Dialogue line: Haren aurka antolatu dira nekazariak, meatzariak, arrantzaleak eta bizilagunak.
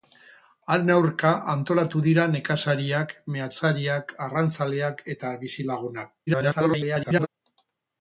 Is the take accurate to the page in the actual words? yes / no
no